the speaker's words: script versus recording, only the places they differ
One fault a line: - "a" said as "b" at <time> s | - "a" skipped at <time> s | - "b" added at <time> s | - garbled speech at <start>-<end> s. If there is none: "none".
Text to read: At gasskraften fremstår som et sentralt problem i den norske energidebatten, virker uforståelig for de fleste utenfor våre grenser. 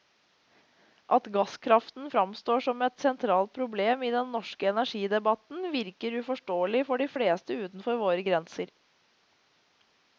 none